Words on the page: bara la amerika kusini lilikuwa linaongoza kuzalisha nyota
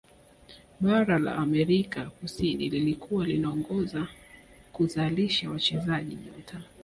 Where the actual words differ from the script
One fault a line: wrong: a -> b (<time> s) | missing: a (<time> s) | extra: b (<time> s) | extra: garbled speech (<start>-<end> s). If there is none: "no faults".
extra: wachezaji (5.5 s)